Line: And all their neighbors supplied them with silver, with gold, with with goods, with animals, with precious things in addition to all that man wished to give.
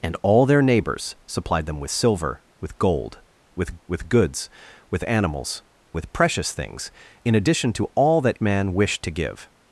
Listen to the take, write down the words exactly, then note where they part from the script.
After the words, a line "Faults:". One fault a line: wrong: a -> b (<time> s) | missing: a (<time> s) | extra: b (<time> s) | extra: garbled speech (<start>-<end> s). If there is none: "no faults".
And all their neighbors supplied them with silver, with gold, with with goods, with animals, with precious things in addition to all that man wished to give.
Faults:
no faults